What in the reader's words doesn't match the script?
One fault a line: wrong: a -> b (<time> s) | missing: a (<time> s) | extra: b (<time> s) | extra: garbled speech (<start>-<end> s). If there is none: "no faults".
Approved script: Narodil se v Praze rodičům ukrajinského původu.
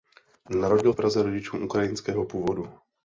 missing: se (0.9 s)